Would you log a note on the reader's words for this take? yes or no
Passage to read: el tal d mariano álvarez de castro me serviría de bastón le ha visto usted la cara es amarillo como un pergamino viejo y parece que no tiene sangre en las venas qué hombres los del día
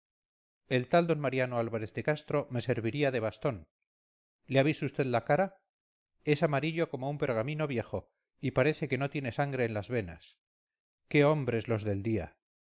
no